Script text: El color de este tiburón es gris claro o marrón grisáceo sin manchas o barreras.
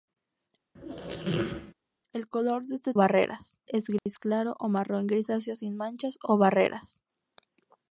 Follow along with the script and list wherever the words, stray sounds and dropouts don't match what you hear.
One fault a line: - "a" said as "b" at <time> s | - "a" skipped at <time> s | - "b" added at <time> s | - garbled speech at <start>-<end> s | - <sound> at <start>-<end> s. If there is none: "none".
- squeak at 0.7-1.7 s
- "tiburón" said as "barreras" at 2.9 s
- dropout at 4.0-4.1 s